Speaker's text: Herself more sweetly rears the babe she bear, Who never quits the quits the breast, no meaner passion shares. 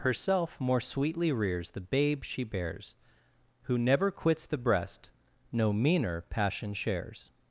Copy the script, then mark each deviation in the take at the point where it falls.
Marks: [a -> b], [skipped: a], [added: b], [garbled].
Herself more sweetly rears the babe she [bear, -> bears] Who never quits the [skipped: quits the] breast, no meaner passion shares.